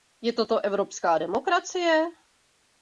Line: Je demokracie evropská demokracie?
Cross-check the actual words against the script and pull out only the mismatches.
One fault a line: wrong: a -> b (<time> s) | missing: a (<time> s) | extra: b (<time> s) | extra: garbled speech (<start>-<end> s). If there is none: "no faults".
wrong: demokracie -> toto (0.3 s)